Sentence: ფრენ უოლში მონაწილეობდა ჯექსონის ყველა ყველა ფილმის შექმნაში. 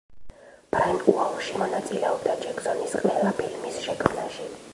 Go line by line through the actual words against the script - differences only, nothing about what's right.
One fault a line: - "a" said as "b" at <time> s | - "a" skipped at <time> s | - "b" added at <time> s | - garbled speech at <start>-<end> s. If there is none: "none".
- "ყველა" skipped at 3.3 s